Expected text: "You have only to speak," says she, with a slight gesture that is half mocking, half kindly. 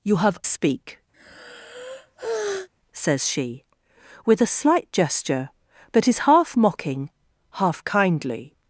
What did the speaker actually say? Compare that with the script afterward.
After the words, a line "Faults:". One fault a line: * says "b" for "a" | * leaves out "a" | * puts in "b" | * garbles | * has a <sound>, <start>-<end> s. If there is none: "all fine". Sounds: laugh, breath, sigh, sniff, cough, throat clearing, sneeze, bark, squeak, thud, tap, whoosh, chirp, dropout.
"You have speak," says she, with a slight gesture that is half mocking, half kindly.
Faults:
* leaves out "only to"
* has a sigh, 1.1-2.7 s